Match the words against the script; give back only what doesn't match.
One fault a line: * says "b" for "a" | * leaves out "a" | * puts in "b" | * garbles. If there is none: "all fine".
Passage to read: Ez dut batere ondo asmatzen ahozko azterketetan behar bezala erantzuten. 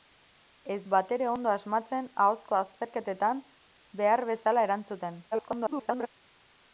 * leaves out "dut"
* garbles